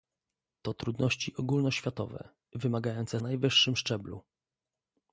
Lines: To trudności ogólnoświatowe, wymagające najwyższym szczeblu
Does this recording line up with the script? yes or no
yes